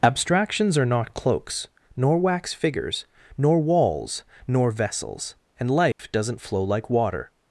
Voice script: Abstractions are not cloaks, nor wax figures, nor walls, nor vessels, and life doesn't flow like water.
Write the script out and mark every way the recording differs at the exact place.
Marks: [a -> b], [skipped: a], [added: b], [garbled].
Abstractions are not cloaks, nor wax figures, nor walls, nor vessels, and life doesn't flow like water.